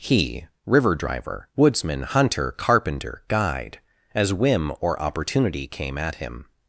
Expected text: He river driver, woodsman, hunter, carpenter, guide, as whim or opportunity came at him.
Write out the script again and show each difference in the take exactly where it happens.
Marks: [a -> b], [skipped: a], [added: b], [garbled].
He river driver, woodsman, hunter, carpenter, guide, as whim or opportunity came at him.